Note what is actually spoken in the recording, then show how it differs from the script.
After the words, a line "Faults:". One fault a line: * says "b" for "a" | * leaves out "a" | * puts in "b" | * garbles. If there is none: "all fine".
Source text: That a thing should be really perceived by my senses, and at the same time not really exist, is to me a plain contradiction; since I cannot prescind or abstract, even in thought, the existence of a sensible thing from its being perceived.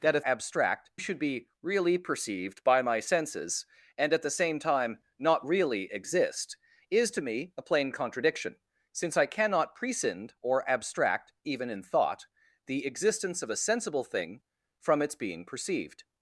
That a abstract should be really perceived by my senses, and at the same time not really exist, is to me a plain contradiction; since I cannot prescind or abstract, even in thought, the existence of a sensible thing from its being perceived.
Faults:
* says "abstract" for "thing"